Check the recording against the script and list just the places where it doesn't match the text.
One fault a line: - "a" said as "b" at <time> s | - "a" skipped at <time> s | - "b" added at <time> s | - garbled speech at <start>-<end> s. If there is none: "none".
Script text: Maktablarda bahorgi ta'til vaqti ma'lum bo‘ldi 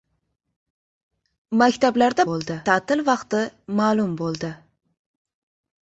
- "bahorgi" said as "bo‘ldi" at 2.3 s